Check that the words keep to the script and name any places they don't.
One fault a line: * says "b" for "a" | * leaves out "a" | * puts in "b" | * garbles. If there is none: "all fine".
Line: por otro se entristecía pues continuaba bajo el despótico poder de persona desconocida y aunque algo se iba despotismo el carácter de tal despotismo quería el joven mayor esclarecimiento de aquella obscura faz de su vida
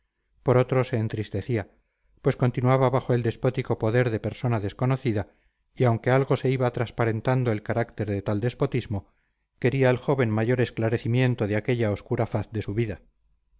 * says "transparentando" for "despotismo"